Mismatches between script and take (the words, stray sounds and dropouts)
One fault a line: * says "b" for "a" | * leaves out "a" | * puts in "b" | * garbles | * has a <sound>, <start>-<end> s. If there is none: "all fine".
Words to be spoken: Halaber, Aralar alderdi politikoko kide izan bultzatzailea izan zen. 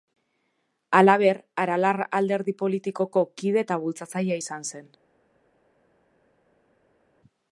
* says "eta" for "izan"